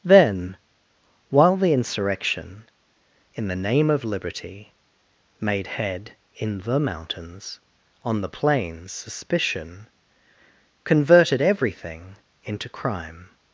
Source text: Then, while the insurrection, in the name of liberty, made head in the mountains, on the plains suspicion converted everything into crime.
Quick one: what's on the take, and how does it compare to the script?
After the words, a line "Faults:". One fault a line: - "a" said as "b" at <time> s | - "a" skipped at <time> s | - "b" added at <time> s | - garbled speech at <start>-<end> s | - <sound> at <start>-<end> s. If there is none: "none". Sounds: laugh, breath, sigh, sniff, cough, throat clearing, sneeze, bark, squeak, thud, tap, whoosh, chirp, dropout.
Then, while the insurrection, in the name of liberty, made head in the mountains, on the plains suspicion converted everything into crime.
Faults:
none